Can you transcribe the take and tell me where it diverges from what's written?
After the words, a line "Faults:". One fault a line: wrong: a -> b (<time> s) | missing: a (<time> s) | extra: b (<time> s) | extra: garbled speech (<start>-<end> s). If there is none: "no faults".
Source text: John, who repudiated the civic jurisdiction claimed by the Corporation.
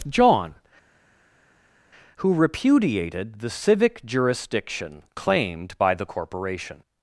John, who repudiated the civic jurisdiction claimed by the Corporation.
Faults:
no faults